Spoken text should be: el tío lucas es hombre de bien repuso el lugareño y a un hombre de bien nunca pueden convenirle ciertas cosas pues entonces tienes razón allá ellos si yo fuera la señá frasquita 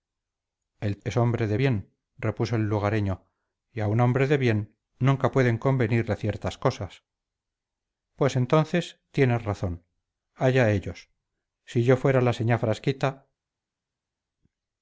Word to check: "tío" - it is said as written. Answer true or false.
false